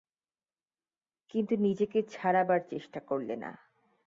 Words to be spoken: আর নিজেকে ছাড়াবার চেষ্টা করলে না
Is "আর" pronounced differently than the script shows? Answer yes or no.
yes